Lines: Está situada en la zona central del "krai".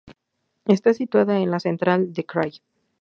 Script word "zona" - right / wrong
wrong